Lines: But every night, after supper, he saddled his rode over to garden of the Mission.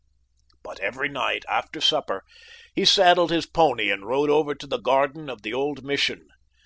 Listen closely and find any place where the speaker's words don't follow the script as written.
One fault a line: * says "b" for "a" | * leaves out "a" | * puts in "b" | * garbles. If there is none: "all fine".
* puts in "pony and"
* puts in "the"
* puts in "old"